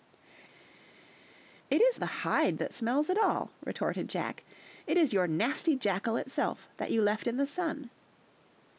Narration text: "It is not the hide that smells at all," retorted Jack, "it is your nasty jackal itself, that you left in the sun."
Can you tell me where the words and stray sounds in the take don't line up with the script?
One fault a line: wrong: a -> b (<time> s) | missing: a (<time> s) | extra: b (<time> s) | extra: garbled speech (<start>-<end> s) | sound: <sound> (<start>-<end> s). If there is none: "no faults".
missing: not (2.0 s)